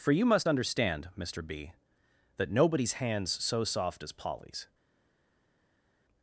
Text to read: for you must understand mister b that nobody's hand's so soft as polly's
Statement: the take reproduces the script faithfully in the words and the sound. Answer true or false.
true